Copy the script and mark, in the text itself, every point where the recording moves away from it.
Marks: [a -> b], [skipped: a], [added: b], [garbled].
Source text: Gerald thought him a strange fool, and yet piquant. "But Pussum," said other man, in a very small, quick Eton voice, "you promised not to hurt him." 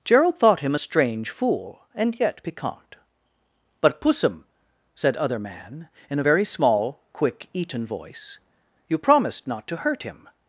Gerald thought him a strange fool, and yet piquant. "But Pussum," said other man, in a very small, quick Eton voice, "you promised not to hurt him."